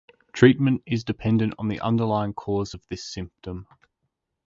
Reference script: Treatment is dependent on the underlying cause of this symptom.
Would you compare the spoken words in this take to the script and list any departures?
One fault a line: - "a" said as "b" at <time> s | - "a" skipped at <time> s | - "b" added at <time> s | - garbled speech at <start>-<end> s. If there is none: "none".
none